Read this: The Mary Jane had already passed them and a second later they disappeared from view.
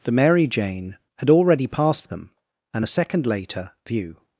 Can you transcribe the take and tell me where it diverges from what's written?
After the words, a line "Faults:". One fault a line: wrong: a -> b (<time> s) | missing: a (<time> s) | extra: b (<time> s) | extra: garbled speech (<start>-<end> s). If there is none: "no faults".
The Mary Jane had already passed them and a second later view.
Faults:
missing: they disappeared from (3.7 s)